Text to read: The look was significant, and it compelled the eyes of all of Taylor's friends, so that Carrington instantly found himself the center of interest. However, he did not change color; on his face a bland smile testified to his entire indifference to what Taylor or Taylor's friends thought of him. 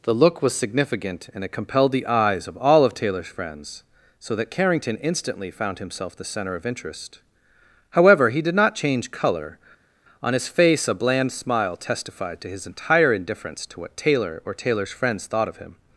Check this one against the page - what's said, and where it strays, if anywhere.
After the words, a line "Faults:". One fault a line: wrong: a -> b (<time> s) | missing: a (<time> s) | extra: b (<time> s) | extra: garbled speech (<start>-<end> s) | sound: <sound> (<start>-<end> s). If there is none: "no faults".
The look was significant, and it compelled the eyes of all of Taylor's friends, so that Carrington instantly found himself the center of interest. However, he did not change color; on his face a bland smile testified to his entire indifference to what Taylor or Taylor's friends thought of him.
Faults:
no faults